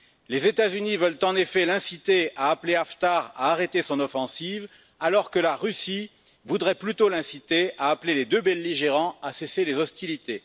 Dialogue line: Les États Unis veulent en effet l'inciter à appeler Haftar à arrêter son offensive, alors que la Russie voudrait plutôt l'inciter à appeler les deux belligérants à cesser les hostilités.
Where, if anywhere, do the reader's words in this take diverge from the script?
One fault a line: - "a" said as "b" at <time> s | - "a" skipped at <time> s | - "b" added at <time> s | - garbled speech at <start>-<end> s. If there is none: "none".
none